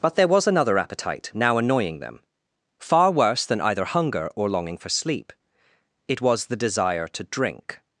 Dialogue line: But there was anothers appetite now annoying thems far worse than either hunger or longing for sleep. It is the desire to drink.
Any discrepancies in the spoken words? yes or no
yes